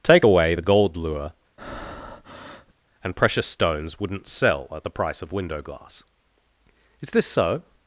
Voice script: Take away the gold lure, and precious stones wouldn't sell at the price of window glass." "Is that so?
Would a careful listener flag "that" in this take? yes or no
yes